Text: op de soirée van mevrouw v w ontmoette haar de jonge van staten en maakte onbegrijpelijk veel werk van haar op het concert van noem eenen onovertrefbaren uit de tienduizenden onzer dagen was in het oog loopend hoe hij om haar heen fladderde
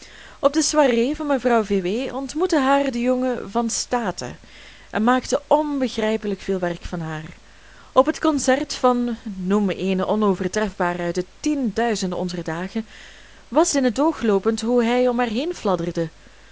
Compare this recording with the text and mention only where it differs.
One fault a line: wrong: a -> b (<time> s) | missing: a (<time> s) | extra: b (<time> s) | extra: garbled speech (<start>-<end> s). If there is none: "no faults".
no faults